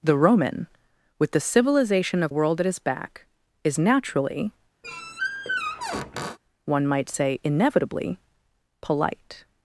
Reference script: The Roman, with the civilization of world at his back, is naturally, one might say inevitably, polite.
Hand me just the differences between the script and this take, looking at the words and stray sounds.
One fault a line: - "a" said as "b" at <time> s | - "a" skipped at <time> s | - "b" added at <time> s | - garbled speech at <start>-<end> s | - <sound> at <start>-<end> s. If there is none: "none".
- squeak at 4.8-6.4 s